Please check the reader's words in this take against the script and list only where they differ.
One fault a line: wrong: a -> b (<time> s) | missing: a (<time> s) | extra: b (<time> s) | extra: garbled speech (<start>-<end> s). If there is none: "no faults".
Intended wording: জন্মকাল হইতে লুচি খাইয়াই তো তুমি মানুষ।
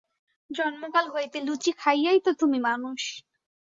no faults